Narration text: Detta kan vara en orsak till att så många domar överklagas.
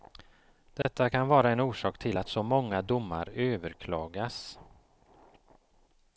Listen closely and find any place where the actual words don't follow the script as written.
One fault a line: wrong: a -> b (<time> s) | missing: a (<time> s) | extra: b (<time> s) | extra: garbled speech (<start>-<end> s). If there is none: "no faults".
no faults